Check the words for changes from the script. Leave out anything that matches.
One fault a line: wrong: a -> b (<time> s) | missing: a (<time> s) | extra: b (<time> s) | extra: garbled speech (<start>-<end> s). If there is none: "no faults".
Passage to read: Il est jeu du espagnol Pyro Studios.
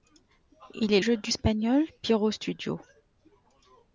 no faults